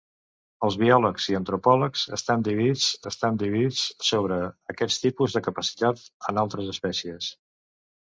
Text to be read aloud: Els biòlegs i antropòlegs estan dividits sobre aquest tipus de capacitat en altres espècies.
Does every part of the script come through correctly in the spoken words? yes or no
no